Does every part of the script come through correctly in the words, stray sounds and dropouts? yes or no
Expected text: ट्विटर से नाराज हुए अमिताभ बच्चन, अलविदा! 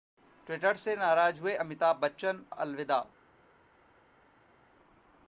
yes